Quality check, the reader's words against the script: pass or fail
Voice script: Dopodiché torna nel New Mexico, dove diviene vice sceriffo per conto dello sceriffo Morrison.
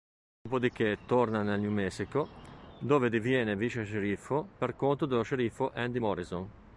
fail